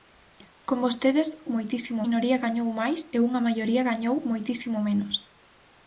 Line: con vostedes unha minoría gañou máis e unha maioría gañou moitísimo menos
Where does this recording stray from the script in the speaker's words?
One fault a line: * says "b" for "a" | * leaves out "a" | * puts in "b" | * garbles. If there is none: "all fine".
* says "moitísimo" for "unha"